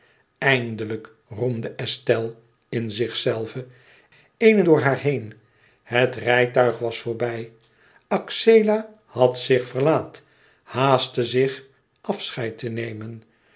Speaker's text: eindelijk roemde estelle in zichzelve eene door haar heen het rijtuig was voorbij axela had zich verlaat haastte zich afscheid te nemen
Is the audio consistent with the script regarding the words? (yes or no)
yes